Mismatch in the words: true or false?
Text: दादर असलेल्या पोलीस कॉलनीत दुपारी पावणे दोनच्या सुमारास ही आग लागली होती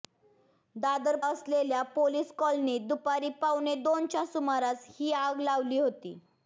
false